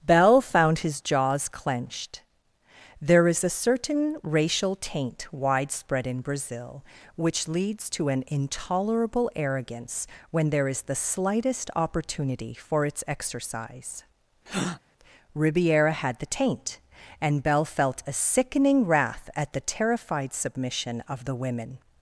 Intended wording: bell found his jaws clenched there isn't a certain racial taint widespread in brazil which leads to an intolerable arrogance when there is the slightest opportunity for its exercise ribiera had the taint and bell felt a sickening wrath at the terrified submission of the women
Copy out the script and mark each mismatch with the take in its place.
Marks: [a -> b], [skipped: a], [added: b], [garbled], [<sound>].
bell found his jaws clenched there [isn't -> is] a certain racial taint widespread in brazil which leads to an intolerable arrogance when there is the slightest opportunity for its exercise [breath] ribiera had the taint and bell felt a sickening wrath at the terrified submission of the women